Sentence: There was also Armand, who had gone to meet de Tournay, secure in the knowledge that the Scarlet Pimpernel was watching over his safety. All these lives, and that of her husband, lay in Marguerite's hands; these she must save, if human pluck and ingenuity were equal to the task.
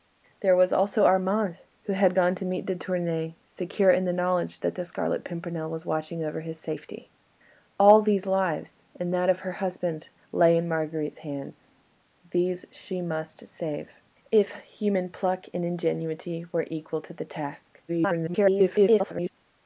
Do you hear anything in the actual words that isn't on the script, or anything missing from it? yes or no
yes